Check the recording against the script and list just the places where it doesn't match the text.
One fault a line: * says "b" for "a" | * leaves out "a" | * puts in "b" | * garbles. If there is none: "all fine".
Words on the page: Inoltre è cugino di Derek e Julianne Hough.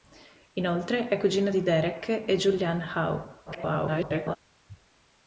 * garbles